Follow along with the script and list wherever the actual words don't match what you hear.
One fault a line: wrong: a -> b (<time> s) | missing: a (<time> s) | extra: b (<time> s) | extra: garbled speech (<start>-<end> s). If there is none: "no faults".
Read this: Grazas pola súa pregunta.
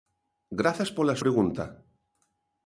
missing: súa (1.2 s)